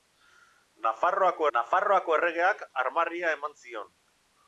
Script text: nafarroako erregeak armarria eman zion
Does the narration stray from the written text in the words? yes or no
yes